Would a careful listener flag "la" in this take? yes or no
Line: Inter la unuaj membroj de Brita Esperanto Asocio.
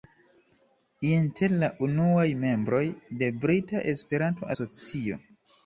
no